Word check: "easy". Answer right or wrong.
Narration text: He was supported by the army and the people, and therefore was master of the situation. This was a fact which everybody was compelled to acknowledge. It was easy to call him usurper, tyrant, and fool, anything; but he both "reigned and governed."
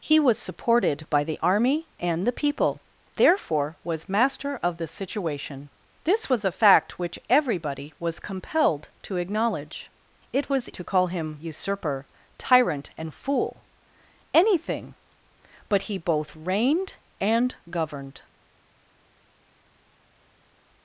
wrong